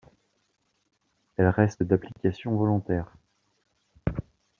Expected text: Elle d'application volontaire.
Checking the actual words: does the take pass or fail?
fail